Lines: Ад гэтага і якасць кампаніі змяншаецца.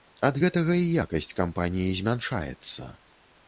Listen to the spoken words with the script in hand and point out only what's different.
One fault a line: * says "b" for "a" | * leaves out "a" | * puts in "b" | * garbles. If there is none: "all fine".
all fine